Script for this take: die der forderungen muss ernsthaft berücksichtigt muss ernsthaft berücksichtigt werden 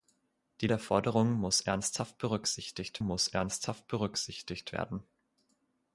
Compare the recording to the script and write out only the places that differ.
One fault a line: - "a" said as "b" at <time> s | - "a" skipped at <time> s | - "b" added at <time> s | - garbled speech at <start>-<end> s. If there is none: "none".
none